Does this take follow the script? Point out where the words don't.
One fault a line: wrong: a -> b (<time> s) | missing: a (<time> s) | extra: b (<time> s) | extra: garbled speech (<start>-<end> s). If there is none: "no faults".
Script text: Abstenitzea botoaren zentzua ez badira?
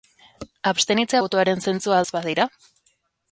no faults